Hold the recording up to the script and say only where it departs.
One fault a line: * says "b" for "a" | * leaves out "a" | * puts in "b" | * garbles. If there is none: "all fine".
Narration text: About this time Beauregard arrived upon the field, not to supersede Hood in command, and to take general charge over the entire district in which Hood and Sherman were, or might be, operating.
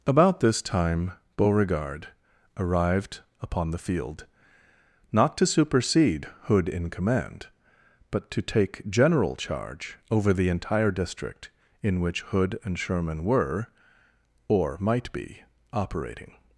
* says "but" for "and"